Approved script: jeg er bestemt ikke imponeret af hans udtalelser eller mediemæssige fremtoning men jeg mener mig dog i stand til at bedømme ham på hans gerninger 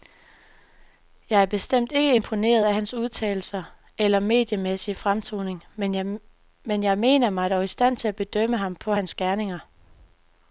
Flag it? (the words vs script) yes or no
no